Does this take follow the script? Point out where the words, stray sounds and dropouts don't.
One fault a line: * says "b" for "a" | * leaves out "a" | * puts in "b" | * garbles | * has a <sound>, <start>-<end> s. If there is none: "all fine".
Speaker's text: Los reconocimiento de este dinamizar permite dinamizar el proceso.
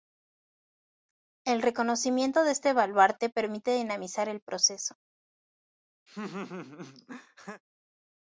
* says "El" for "Los"
* says "baluarte" for "dinamizar"
* has a laugh, 6.1-7.6 s